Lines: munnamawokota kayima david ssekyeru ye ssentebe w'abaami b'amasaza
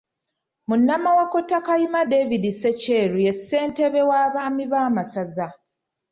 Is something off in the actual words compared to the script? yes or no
no